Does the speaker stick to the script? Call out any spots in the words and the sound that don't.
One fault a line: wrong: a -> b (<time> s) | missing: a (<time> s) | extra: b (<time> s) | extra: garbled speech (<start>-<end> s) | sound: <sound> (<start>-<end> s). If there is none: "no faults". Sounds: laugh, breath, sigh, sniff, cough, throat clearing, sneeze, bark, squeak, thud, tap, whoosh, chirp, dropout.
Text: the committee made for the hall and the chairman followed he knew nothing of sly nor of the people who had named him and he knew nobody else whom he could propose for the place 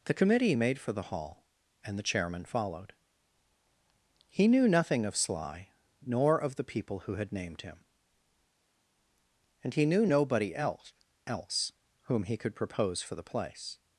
extra: else (11.3 s)